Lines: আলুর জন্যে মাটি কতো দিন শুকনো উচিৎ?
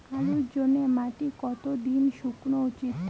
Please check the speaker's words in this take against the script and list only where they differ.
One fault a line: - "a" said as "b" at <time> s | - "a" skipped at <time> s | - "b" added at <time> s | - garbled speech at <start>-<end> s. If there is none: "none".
none